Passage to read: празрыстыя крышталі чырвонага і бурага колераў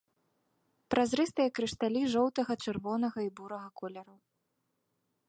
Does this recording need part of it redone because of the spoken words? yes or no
yes